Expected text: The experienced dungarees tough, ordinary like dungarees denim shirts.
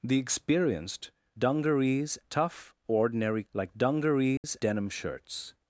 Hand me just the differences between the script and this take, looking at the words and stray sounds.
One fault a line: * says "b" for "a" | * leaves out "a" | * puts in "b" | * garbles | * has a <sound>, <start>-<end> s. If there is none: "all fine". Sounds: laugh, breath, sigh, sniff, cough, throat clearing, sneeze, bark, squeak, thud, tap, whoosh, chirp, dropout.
* has a dropout, 4.4-4.4 s